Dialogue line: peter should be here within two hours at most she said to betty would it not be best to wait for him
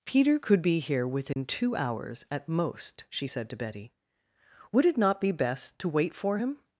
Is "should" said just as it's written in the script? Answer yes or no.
no